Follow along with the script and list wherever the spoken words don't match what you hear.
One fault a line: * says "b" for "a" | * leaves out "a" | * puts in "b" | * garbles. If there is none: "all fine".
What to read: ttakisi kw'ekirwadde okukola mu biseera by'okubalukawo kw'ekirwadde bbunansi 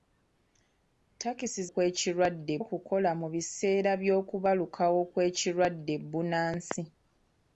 all fine